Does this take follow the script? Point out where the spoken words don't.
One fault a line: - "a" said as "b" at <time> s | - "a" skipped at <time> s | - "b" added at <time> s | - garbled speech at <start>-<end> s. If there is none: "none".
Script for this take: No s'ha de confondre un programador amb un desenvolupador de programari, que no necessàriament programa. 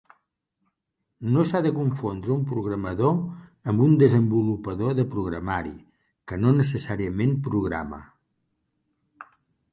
none